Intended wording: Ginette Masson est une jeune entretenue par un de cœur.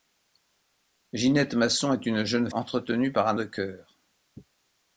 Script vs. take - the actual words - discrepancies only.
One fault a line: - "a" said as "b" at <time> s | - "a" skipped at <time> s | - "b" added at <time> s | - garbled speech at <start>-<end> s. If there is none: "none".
none